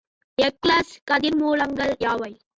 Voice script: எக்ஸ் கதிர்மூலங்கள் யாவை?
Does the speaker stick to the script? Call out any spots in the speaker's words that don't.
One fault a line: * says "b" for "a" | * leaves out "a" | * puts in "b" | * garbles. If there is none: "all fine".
all fine